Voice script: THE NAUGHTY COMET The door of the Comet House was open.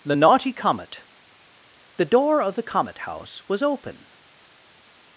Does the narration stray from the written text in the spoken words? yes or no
no